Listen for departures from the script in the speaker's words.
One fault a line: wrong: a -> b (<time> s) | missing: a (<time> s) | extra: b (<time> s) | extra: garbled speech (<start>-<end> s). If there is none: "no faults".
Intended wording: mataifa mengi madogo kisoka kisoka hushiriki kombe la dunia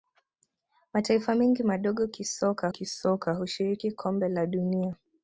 no faults